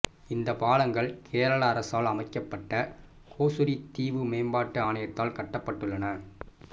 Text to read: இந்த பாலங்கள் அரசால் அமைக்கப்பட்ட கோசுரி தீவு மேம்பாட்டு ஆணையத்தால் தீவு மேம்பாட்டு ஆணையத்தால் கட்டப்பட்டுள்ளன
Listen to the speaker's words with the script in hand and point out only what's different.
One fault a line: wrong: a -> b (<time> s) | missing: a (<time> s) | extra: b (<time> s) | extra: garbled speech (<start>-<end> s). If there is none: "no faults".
extra: கேரள (1.3 s)
missing: தீவு மேம்பாட்டு ஆணையத்தால் (5.4 s)